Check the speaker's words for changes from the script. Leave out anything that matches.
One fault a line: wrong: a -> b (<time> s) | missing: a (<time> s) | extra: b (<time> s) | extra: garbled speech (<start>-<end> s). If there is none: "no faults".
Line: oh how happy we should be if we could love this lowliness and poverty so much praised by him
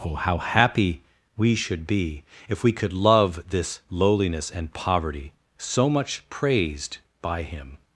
no faults